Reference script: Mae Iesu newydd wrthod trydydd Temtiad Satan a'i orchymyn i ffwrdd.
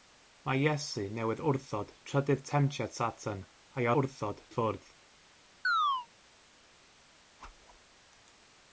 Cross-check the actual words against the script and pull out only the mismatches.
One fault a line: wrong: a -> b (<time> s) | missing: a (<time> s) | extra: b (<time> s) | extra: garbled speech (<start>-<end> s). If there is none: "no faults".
wrong: orchymyn -> wrthod (4.0 s)